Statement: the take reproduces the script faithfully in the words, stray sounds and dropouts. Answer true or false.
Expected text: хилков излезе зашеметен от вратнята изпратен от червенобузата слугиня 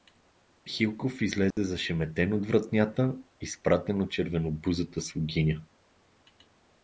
false